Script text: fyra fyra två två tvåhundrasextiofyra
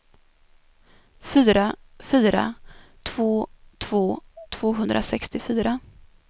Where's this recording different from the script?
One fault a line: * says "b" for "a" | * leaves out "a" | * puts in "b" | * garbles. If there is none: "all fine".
all fine